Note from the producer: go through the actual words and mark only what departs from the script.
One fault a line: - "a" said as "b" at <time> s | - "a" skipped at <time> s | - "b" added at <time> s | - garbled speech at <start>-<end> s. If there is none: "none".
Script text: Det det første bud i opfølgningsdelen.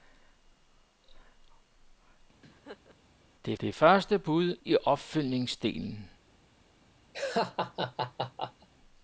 none